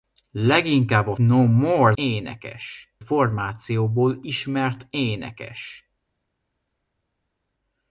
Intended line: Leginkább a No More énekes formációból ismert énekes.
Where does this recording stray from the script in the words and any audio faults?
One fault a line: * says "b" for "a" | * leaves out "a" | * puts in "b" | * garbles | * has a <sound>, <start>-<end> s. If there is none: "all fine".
all fine